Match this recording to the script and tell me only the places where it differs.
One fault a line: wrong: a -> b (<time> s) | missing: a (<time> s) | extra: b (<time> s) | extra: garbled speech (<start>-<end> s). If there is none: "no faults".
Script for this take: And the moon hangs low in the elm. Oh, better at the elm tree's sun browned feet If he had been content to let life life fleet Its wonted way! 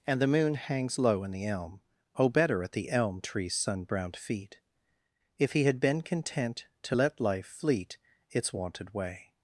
missing: life (7.5 s)